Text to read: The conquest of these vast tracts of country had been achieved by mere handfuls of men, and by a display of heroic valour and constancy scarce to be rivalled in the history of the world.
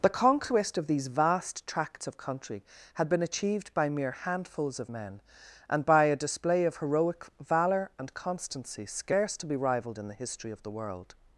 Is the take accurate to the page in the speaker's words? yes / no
yes